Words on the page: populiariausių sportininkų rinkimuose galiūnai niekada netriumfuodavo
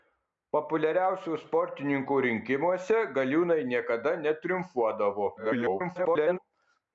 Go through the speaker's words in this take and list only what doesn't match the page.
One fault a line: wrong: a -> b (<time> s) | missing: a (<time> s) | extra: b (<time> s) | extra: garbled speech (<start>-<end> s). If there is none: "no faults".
extra: garbled speech (5.4-6.4 s)